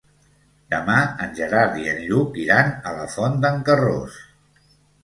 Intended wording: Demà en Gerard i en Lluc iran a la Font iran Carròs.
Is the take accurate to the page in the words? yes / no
no